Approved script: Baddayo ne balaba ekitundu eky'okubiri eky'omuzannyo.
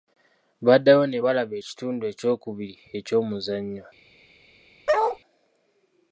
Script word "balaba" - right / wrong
right